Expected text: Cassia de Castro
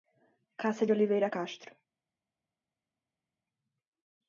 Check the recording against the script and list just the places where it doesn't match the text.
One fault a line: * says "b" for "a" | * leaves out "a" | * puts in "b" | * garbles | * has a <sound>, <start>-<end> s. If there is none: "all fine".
* puts in "Oliveira"